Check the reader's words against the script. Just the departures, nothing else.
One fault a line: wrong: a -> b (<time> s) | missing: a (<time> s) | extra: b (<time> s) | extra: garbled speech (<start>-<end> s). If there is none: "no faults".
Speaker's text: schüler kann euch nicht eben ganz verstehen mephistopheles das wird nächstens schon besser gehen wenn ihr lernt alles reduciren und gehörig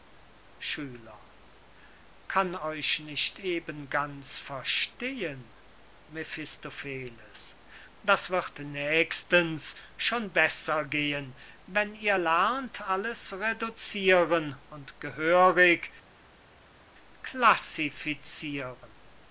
no faults